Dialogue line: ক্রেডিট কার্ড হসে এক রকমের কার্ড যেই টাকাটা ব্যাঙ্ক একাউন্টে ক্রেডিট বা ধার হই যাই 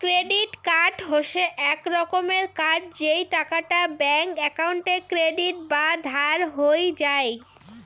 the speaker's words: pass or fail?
pass